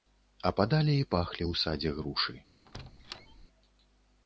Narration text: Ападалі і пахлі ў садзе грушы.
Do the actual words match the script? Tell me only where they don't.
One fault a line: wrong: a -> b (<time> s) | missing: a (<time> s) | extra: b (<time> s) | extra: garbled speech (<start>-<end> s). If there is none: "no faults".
no faults